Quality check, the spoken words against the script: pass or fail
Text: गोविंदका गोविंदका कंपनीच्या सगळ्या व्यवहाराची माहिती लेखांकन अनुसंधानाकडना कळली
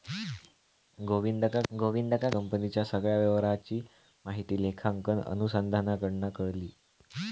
pass